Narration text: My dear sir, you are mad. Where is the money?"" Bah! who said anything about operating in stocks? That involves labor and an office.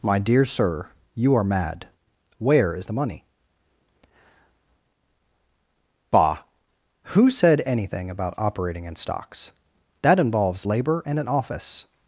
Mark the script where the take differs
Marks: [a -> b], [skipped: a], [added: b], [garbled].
My dear sir, you are mad. Where is the money?"" Bah! who said anything about operating in stocks? That involves labor and an office.